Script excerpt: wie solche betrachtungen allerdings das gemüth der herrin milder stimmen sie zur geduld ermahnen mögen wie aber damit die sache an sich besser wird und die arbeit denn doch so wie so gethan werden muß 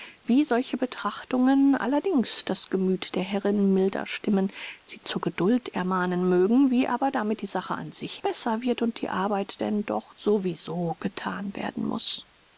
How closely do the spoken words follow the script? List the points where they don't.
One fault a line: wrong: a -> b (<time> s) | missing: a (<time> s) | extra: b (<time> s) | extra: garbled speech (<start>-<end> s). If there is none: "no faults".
no faults